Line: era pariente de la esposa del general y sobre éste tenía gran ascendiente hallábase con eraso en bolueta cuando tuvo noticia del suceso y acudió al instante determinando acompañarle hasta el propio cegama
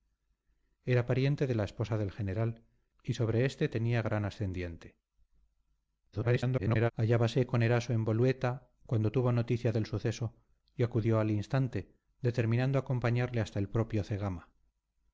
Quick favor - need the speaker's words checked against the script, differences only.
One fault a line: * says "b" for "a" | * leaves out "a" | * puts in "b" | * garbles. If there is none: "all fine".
* garbles